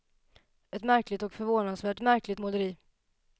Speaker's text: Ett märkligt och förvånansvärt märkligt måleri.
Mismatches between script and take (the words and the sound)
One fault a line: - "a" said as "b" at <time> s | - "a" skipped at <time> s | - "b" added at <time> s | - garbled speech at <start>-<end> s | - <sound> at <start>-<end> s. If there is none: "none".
none